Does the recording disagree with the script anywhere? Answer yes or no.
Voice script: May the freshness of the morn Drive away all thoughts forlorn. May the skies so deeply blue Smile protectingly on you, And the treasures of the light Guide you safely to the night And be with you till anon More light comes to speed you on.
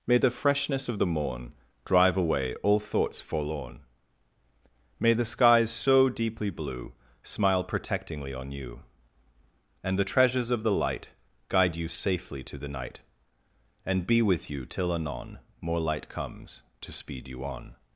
no